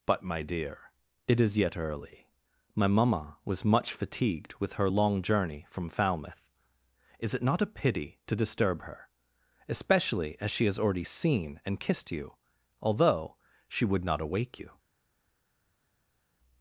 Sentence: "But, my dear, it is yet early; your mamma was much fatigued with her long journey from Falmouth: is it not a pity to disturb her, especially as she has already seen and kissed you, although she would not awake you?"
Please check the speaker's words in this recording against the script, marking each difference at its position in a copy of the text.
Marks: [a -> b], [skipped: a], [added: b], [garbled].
"But, my dear, it is yet early; [your -> my] mamma was much fatigued with her long journey from Falmouth: is it not a pity to disturb her, especially as she has already seen and kissed you, although she would not awake you?"